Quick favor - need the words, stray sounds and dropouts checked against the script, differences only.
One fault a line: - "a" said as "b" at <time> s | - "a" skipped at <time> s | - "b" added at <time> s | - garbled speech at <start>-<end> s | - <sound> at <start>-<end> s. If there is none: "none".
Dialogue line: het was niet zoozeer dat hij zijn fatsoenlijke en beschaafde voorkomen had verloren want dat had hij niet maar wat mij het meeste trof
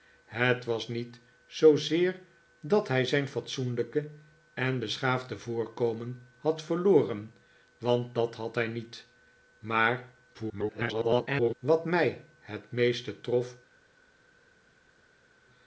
- garbled speech at 10.3-11.5 s